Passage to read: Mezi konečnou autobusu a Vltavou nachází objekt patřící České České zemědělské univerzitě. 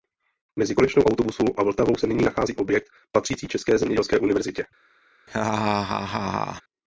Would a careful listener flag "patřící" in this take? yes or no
no